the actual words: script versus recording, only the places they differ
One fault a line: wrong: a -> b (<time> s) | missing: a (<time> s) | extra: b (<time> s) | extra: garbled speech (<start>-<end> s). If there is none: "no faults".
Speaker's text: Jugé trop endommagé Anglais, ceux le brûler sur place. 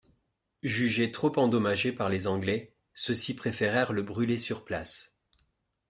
extra: par les (1.9 s)
extra: ci préférèrent (3.1 s)